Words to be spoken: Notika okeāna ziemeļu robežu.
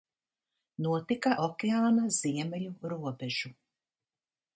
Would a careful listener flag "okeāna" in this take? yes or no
no